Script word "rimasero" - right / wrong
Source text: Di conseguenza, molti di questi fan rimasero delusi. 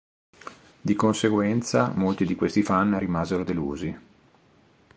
right